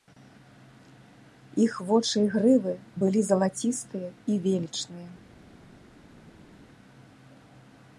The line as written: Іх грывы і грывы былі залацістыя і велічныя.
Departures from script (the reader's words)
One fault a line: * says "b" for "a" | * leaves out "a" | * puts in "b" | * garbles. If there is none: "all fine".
* says "вочы" for "грывы"